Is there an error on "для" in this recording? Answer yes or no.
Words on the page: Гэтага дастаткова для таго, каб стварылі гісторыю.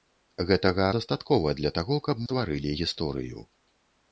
no